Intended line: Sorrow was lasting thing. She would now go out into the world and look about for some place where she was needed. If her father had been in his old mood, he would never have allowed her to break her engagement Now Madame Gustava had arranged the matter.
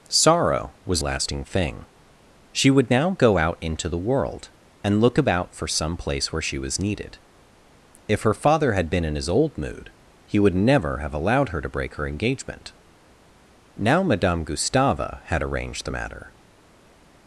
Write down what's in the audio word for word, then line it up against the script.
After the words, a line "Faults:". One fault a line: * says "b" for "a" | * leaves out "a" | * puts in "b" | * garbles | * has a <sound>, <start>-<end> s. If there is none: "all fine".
Sorrow was lasting thing. She would now go out into the world and look about for some place where she was needed. If her father had been in his old mood, he would never have allowed her to break her engagement Now Madame Gustava had arranged the matter.
Faults:
all fine